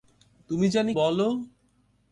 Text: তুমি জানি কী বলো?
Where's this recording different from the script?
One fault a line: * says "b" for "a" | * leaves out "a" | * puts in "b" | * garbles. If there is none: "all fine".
* leaves out "কী"